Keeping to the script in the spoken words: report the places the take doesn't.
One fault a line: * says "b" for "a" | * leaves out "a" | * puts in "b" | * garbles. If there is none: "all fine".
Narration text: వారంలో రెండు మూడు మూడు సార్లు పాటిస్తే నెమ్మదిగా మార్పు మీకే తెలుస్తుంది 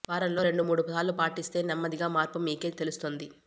* leaves out "మూడు"